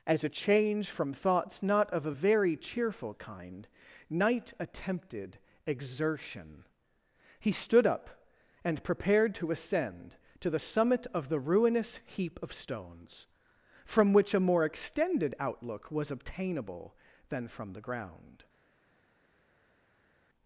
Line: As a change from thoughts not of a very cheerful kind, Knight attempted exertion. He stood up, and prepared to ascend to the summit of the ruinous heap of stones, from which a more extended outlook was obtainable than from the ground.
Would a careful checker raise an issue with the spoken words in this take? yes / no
no